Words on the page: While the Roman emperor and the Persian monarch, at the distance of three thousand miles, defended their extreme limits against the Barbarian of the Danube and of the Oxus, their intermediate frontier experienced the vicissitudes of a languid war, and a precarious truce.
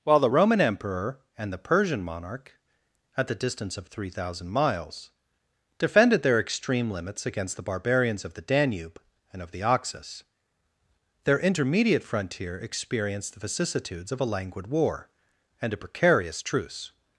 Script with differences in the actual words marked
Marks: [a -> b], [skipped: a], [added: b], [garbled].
While the Roman emperor and the Persian monarch, at the distance of three thousand miles, defended their extreme limits against the [Barbarian -> Barbarians] of the Danube and of the Oxus, their intermediate frontier experienced the vicissitudes of a languid war, and a precarious truce.